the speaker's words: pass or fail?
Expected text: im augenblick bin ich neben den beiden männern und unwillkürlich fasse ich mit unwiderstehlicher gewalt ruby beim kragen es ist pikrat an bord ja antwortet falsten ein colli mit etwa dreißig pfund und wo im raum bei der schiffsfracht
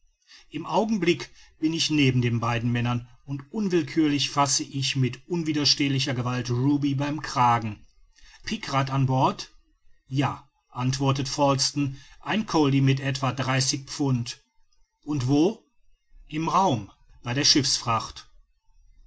fail